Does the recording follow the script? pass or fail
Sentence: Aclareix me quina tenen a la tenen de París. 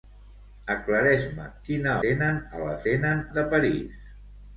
pass